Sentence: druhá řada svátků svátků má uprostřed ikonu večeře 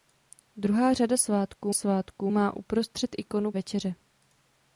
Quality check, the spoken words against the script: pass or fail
pass